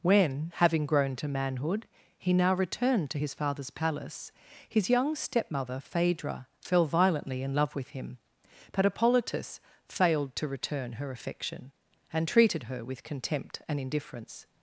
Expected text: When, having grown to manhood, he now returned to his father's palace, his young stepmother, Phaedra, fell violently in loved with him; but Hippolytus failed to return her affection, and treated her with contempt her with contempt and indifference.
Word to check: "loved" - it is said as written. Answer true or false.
false